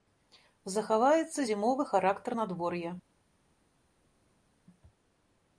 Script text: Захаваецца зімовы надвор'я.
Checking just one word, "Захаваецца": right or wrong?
right